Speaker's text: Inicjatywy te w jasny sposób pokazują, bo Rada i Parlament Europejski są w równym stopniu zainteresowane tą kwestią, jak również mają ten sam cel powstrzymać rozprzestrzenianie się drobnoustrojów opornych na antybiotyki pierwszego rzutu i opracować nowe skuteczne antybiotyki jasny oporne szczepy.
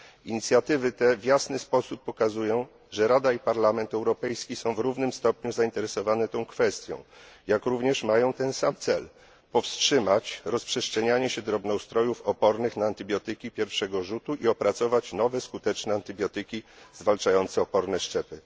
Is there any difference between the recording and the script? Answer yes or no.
yes